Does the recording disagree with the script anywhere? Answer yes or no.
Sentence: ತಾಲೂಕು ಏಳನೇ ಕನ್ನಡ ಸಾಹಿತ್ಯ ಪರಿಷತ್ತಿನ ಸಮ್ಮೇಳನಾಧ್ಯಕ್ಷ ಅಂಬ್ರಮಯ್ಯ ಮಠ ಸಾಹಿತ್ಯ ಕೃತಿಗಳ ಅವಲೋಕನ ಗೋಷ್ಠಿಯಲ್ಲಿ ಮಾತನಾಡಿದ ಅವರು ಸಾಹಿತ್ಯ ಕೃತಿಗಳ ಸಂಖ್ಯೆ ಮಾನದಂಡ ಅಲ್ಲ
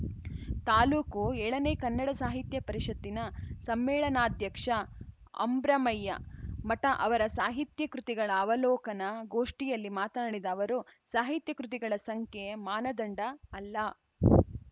yes